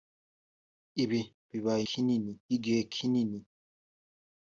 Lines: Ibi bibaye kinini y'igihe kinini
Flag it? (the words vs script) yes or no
no